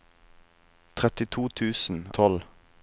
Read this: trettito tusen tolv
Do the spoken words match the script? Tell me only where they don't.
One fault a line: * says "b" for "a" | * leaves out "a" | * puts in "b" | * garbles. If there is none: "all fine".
all fine